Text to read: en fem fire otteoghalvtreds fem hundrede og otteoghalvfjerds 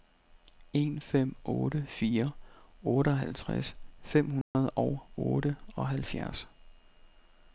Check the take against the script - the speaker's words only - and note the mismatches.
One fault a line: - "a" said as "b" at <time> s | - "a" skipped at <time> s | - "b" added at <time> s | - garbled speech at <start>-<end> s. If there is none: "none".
- "otte" added at 1.4 s